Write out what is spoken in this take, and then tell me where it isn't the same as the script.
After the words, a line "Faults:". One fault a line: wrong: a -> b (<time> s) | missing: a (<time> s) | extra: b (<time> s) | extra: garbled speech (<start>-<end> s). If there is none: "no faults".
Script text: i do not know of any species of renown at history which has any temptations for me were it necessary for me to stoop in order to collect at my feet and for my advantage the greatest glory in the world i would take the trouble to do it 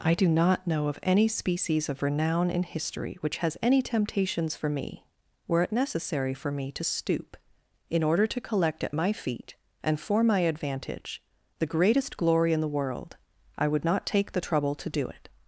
i do not know of any species of renown in history which has any temptations for me were it necessary for me to stoop in order to collect at my feet and for my advantage the greatest glory in the world i would not take the trouble to do it
Faults:
wrong: at -> in (2.5 s)
extra: not (13.8 s)